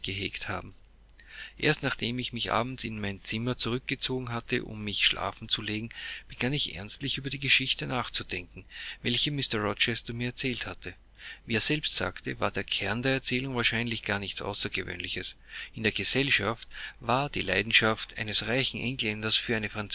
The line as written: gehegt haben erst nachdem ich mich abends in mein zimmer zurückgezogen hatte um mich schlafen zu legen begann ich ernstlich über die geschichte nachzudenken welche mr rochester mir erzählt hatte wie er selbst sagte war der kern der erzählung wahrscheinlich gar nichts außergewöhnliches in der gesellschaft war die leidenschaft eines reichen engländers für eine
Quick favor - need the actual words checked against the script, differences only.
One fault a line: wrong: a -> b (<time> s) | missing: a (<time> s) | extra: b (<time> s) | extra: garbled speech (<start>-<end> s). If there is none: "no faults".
no faults